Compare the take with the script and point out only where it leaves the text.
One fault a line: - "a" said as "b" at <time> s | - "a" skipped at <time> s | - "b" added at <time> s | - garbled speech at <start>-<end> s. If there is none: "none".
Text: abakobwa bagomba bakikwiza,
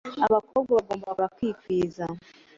none